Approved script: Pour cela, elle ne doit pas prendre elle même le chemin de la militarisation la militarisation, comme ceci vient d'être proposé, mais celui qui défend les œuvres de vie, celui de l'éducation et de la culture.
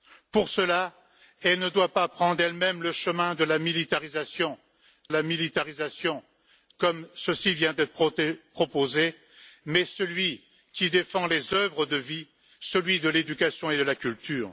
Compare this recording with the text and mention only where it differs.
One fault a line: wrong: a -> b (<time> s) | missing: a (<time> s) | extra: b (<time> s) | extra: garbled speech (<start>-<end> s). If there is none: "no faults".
no faults